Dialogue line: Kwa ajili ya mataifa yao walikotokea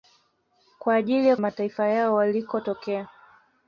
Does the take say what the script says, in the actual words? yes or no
yes